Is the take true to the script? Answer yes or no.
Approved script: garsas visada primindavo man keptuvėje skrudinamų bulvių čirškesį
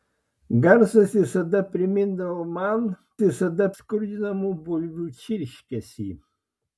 no